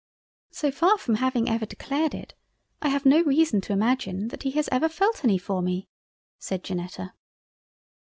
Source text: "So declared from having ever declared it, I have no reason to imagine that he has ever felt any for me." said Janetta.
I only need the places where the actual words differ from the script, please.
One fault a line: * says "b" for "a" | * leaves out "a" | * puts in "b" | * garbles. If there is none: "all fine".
* says "far" for "declared"